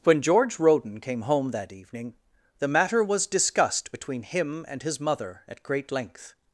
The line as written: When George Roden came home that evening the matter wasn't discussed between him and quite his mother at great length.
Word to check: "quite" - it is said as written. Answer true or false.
false